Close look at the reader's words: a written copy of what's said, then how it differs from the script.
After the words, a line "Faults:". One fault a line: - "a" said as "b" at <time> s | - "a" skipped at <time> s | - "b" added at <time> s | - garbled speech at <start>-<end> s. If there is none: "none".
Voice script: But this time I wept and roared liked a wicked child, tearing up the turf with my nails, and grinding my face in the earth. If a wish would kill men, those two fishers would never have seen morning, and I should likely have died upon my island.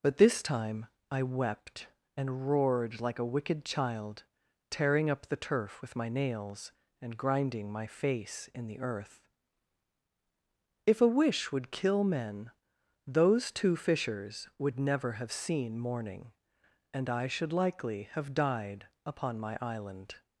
But this time I wept and roared like a wicked child, tearing up the turf with my nails, and grinding my face in the earth. If a wish would kill men, those two fishers would never have seen morning, and I should likely have died upon my island.
Faults:
- "liked" said as "like" at 3.0 s